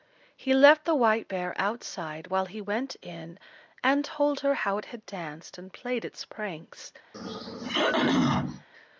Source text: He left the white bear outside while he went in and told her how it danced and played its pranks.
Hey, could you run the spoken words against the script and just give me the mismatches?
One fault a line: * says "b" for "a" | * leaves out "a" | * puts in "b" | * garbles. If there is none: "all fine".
* puts in "had"